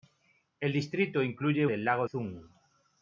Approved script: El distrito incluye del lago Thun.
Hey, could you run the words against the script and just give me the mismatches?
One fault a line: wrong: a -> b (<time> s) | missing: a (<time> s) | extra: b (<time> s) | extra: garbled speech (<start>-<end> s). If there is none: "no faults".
no faults